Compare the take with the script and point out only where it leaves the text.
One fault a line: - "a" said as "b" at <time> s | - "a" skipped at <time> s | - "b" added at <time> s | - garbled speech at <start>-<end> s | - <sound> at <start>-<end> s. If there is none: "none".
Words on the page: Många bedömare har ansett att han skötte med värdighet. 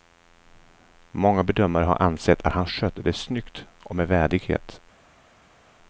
- "det snyggt och" added at 3.0 s